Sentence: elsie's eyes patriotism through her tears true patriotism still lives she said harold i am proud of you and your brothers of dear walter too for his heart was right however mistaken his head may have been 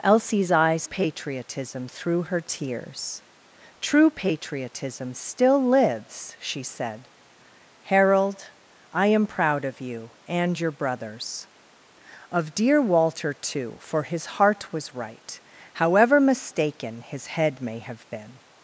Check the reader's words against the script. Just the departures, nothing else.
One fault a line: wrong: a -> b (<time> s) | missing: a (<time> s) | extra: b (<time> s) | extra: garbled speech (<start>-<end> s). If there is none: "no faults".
no faults